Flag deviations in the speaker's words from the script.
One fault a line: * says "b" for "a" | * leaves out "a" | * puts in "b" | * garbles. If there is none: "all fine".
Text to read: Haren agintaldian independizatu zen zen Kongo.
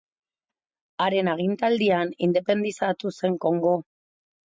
* leaves out "zen"